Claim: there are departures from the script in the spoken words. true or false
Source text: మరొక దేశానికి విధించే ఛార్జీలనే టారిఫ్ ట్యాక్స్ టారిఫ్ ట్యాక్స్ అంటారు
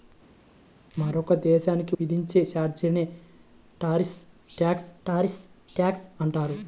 false